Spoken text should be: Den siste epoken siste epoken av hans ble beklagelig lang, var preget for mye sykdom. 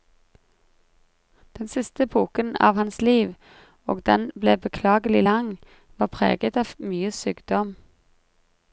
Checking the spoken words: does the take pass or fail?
fail